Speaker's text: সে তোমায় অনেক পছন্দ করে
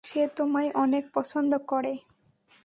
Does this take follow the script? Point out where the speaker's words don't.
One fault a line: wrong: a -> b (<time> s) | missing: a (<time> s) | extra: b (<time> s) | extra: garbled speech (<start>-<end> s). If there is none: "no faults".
no faults